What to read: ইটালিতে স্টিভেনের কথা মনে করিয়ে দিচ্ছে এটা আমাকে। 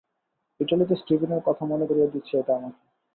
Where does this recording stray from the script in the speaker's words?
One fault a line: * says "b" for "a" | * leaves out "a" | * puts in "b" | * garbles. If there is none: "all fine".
all fine